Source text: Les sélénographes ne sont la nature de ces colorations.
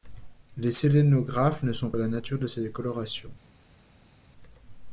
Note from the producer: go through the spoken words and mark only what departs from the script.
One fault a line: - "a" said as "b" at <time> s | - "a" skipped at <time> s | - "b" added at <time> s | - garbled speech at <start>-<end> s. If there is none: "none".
none